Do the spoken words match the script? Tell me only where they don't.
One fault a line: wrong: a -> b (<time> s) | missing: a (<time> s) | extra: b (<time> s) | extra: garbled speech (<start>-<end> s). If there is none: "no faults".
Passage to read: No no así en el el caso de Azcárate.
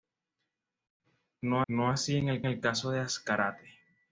no faults